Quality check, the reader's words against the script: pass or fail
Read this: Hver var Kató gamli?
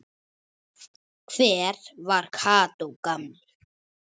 pass